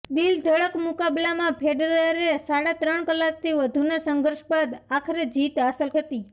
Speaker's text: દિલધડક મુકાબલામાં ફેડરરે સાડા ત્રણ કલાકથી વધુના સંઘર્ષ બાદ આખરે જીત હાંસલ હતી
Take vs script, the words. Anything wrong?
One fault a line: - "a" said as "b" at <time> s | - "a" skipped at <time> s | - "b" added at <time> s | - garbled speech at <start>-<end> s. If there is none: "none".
none